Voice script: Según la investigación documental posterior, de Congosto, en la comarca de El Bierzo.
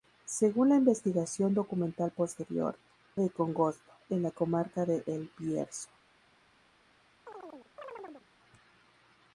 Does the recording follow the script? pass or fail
pass